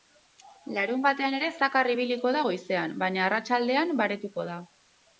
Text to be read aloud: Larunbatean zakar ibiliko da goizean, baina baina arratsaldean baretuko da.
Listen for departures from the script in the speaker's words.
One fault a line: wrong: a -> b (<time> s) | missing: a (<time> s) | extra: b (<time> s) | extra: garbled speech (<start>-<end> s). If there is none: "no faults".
extra: ere (1.4 s)
missing: baina (3.2 s)